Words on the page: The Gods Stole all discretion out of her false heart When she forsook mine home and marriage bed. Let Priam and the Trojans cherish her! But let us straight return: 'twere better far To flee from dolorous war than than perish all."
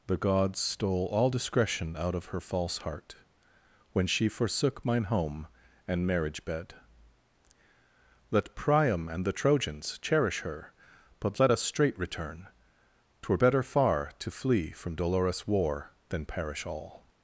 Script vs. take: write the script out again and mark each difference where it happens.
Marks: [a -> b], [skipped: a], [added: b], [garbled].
The Gods Stole all discretion out of her false heart When she forsook mine home and marriage bed. Let Priam and the Trojans cherish her! But let us straight return: 'twere better far To flee from dolorous war than [skipped: than] perish all."